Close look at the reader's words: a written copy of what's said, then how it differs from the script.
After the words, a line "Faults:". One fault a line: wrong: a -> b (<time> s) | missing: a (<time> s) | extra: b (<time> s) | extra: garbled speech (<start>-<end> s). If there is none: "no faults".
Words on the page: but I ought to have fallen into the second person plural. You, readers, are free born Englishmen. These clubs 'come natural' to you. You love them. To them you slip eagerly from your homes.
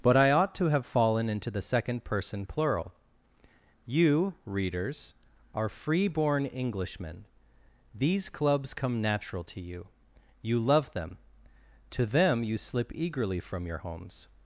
but I ought to have fallen into the second person plural. You, readers, are free born Englishmen. These clubs 'come natural' to you. You love them. To them you slip eagerly from your homes.
Faults:
no faults